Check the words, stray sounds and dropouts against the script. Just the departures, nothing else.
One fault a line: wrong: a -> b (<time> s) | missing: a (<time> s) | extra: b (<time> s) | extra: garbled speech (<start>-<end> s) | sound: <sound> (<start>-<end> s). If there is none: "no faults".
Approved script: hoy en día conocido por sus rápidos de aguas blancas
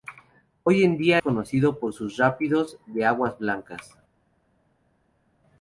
no faults